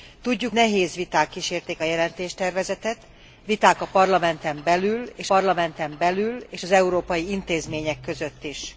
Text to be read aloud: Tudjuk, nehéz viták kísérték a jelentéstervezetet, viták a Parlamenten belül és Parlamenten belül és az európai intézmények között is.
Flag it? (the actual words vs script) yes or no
no